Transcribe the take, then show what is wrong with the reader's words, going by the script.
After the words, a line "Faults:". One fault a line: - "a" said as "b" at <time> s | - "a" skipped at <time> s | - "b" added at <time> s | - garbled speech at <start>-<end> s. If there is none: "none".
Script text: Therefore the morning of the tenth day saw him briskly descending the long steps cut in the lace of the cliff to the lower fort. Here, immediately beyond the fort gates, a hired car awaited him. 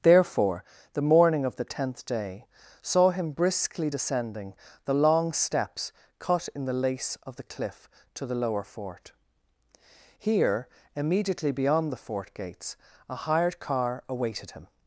Therefore the morning of the tenth day saw him briskly descending the long steps cut in the lace of the cliff to the lower fort. Here, immediately beyond the fort gates, a hired car awaited him.
Faults:
none